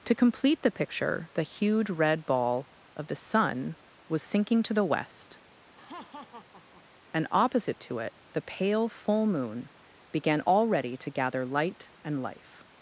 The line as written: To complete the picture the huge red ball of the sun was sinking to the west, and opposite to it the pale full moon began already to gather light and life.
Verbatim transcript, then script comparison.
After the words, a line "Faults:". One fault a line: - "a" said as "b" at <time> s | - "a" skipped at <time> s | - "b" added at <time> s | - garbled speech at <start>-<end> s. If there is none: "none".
To complete the picture the huge red ball of the sun was sinking to the west, and opposite to it the pale full moon began already to gather light and life.
Faults:
none